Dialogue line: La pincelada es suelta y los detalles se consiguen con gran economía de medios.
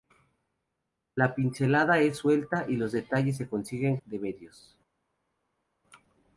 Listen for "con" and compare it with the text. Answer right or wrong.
wrong